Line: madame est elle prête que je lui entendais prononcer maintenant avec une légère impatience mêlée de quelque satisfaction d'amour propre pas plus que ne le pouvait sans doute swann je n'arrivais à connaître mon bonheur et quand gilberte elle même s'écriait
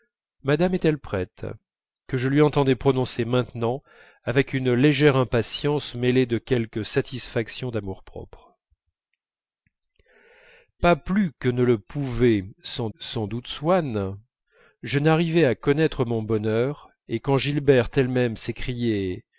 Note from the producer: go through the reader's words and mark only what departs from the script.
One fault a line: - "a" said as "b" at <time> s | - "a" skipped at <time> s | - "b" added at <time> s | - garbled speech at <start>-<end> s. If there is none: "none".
- "sans" added at 13.0 s